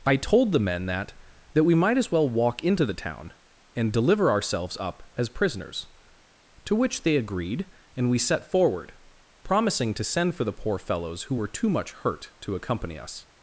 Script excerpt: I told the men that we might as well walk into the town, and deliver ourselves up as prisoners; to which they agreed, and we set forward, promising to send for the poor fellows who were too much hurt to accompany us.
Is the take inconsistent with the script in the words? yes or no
yes